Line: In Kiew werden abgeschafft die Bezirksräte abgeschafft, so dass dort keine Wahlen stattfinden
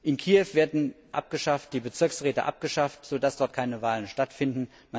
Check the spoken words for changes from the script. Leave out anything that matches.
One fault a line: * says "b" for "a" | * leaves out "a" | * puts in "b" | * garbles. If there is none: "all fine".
all fine